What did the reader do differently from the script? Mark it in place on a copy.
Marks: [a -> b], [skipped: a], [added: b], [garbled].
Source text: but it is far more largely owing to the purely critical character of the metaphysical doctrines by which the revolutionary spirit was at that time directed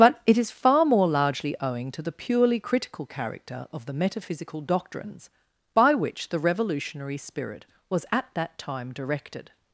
but it is far more largely owing to the purely critical character of the metaphysical doctrines by which the revolutionary spirit was at that time directed